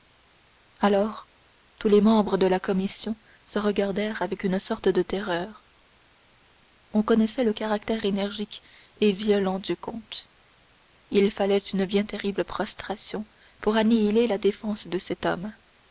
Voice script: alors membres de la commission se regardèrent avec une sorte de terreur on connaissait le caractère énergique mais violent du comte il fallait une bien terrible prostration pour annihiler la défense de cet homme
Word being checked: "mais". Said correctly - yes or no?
no